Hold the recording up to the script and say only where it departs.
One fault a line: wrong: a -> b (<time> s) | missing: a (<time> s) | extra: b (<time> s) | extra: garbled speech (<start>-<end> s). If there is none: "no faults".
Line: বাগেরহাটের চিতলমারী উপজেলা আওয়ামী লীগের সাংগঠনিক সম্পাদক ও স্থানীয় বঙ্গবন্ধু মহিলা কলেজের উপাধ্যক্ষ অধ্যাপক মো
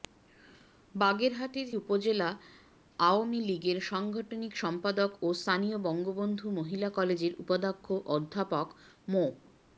missing: চিতলমারী (1.7 s)